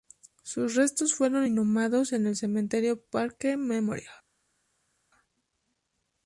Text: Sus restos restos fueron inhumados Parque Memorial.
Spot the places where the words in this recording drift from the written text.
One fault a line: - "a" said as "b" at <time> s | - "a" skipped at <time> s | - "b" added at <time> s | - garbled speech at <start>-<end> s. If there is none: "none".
- "restos" skipped at 1.1 s
- "en el cementerio" added at 2.1 s